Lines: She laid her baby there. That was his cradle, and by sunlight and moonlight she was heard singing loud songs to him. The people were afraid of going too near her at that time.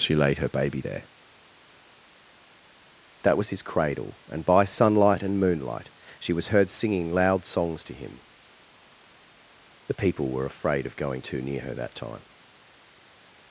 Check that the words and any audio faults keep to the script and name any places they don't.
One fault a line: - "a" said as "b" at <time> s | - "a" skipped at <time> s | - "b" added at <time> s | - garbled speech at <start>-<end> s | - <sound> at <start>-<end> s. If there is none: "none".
- "at" skipped at 11.7 s